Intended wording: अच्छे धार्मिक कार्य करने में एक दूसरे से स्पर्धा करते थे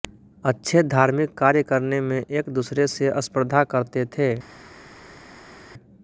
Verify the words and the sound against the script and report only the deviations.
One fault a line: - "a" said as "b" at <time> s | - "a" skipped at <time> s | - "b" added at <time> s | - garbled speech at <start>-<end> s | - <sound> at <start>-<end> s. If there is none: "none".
none